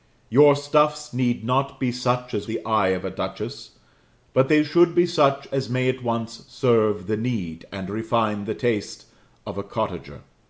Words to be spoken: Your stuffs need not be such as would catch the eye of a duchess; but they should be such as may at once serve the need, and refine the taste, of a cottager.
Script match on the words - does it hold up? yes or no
no